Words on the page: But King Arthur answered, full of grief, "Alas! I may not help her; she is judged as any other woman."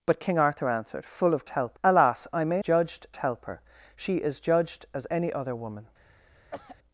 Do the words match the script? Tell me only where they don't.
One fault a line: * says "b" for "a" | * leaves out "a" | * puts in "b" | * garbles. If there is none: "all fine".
* says "help" for "grief"
* says "judged" for "not"